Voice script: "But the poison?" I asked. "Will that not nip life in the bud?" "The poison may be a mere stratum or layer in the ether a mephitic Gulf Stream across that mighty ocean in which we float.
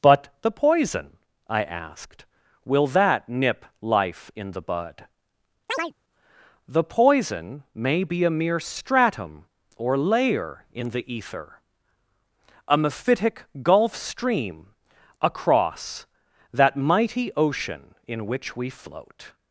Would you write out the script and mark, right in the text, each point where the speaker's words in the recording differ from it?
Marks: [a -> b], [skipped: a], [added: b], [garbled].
"But the poison?" I asked. "Will that [skipped: not] nip life in the bud?" "The poison may be a mere stratum or layer in the ether a mephitic Gulf Stream across that mighty ocean in which we float.